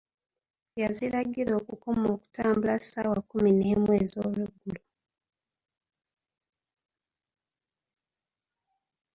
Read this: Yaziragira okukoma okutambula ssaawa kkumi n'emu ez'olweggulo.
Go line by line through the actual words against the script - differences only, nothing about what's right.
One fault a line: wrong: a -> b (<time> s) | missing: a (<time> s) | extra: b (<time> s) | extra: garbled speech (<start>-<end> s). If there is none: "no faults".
no faults